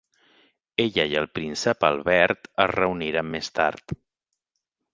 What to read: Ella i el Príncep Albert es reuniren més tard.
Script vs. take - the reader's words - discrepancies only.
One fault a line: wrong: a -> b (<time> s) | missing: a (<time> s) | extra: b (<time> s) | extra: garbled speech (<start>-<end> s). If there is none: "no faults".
no faults